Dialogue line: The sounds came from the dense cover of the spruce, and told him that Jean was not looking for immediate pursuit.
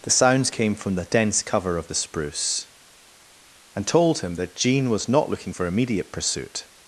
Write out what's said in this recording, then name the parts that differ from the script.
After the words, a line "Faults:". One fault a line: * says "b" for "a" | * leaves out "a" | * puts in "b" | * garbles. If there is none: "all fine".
The sounds came from the dense cover of the spruce, and told him that Jean was not looking for immediate pursuit.
Faults:
all fine